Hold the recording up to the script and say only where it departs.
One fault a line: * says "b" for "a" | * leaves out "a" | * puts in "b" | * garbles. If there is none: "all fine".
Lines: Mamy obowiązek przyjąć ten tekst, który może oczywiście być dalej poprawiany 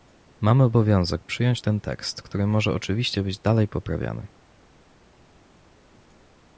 all fine